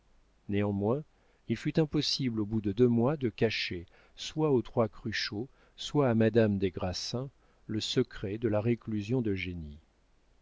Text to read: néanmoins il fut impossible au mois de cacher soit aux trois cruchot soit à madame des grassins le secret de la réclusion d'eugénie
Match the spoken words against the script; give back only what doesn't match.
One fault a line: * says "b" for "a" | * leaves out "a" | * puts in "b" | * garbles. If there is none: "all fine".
* puts in "bout de deux"